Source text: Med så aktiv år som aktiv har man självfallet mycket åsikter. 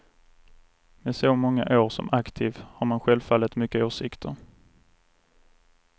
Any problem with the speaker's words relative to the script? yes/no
yes